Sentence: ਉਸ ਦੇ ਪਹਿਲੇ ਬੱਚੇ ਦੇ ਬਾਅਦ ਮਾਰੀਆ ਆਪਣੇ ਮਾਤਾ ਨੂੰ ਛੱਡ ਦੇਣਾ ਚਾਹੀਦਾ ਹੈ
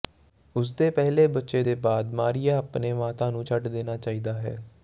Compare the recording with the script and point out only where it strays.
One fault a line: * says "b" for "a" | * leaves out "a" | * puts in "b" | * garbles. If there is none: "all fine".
all fine